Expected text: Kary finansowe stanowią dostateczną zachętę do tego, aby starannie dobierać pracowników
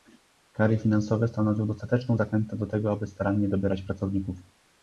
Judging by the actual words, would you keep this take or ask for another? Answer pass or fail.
pass